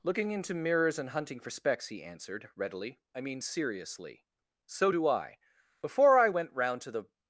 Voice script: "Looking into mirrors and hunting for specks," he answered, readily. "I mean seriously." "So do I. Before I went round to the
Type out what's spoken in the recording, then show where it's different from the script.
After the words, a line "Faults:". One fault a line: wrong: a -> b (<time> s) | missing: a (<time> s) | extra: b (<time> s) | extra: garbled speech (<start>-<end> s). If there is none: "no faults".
"Looking into mirrors and hunting for specks," he answered, readily. "I mean seriously." "So do I. Before I went round to the
Faults:
no faults